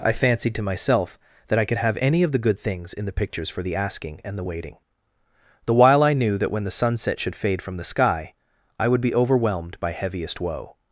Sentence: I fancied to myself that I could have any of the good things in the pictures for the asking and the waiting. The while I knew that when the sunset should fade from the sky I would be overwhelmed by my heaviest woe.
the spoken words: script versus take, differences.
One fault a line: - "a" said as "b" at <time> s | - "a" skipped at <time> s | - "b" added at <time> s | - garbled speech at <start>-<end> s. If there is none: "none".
- "my" skipped at 9.9 s